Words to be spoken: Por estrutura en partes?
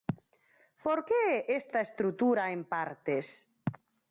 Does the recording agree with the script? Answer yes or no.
no